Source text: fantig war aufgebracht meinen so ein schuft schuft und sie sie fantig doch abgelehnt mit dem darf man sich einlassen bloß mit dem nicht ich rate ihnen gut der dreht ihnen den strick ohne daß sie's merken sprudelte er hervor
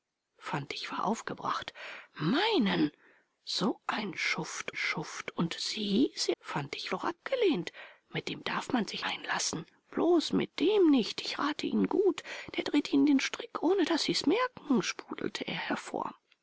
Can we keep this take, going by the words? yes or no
yes